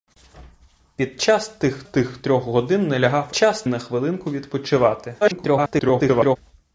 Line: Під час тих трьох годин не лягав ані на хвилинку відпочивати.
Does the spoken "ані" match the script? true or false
false